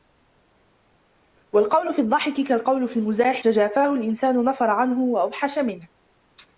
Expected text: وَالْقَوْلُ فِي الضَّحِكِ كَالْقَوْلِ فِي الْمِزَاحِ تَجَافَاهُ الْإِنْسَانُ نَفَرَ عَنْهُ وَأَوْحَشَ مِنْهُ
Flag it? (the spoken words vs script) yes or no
no